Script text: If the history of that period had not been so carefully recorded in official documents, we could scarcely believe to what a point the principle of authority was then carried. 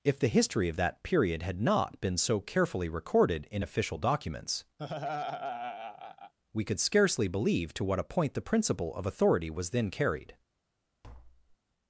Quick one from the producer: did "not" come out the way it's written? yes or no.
yes